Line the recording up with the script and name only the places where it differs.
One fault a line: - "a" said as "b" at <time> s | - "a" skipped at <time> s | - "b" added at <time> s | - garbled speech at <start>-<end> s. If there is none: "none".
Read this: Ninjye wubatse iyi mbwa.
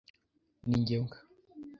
- "wubatse iyi" skipped at 0.9 s